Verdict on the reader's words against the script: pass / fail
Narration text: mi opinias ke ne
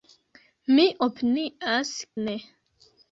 fail